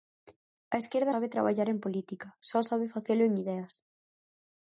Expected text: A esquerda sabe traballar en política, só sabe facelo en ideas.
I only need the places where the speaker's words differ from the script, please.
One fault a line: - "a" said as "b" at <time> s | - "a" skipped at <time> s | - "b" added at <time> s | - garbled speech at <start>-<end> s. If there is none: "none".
none